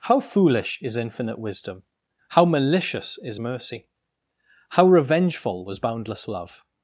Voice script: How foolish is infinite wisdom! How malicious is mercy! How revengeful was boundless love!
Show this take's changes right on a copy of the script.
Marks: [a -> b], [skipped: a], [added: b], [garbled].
How foolish is infinite wisdom! How malicious is mercy! How revengeful was boundless love!